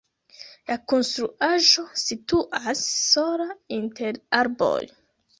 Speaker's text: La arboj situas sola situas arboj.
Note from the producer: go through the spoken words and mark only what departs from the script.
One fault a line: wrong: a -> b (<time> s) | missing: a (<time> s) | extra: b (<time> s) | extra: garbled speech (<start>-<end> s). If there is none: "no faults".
wrong: arboj -> konstruaĵo (0.9 s)
wrong: situas -> inter (3.8 s)